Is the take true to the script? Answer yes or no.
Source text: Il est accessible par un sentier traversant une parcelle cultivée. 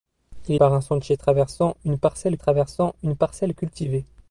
no